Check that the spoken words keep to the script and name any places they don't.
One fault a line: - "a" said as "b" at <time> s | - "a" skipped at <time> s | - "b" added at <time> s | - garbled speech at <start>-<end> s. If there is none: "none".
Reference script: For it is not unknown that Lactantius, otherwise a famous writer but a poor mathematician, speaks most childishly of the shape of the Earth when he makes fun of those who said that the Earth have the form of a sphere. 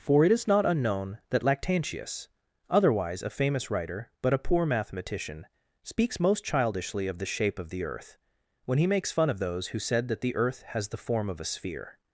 - "have" said as "has" at 10.7 s